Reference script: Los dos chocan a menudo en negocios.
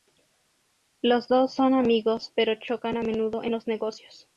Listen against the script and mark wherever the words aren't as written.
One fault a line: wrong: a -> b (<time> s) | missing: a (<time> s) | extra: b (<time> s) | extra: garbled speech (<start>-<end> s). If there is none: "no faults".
extra: son amigos pero (1.5 s)
extra: los (3.5 s)